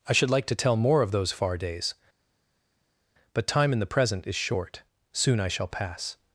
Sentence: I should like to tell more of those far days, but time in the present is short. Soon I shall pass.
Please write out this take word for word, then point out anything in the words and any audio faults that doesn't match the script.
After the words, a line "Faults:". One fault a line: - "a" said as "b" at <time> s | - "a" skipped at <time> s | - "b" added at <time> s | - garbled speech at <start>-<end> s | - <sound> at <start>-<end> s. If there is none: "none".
I should like to tell more of those far days, but time in the present is short. Soon I shall pass.
Faults:
none